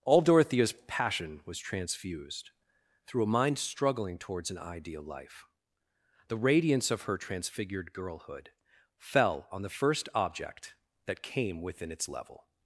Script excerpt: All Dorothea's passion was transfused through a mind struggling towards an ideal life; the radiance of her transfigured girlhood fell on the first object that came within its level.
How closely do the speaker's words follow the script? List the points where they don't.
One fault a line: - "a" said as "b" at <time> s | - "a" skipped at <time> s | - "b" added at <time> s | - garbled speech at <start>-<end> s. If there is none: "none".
none